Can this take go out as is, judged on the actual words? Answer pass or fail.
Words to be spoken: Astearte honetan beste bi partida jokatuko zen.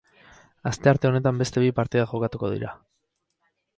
fail